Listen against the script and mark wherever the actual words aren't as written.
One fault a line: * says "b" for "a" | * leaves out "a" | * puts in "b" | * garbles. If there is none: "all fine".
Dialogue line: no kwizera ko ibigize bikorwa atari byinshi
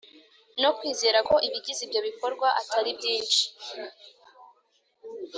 * puts in "ibyo"